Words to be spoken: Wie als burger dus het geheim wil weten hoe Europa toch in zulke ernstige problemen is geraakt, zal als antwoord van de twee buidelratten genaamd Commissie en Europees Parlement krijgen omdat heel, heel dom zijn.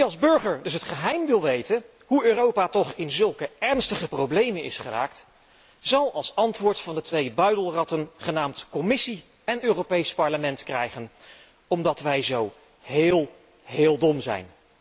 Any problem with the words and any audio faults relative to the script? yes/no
yes